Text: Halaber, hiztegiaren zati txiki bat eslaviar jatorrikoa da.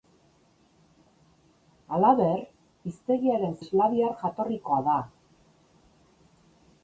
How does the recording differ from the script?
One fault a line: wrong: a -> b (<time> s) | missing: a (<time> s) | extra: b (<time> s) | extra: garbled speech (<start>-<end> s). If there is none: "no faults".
missing: zati txiki bat (3.5 s)